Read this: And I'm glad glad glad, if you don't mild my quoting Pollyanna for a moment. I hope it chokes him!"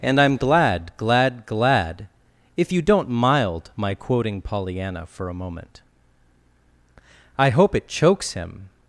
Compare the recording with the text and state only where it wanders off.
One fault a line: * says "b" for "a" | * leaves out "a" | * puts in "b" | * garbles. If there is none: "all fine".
all fine